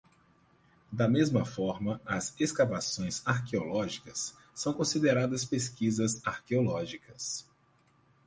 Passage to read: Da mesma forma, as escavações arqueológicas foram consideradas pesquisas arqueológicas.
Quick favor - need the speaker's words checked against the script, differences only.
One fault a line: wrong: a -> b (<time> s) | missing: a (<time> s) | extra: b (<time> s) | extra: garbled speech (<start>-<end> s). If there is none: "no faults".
wrong: foram -> são (4.5 s)